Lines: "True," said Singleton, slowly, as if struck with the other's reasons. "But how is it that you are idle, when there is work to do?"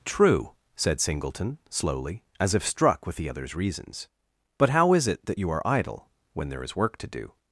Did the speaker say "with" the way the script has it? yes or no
yes